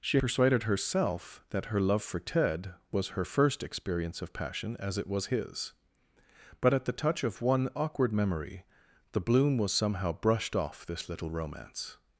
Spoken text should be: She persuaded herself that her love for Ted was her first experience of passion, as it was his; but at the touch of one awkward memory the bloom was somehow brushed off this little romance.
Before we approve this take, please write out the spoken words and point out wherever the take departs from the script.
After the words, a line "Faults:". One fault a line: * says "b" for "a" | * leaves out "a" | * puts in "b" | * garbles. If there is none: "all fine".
She persuaded herself that her love for Ted was her first experience of passion, as it was his; but at the touch of one awkward memory the bloom was somehow brushed off this little romance.
Faults:
all fine